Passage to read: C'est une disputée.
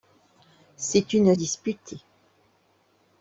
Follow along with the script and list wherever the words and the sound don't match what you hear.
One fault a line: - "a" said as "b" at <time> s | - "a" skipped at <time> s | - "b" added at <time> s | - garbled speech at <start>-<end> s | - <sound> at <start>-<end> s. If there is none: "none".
none